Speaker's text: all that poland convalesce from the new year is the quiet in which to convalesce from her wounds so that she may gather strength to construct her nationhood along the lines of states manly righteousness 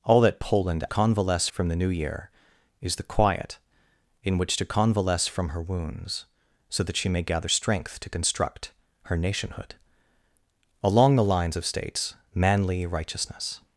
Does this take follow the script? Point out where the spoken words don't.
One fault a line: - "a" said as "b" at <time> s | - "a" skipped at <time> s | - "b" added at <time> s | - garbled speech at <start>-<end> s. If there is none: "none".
none